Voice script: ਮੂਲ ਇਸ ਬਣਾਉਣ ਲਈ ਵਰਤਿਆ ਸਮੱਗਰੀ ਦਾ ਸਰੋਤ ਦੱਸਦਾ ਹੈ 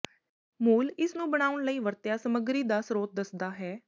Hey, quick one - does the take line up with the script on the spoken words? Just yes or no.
no